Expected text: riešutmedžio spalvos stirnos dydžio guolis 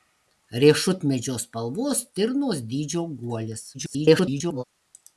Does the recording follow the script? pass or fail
fail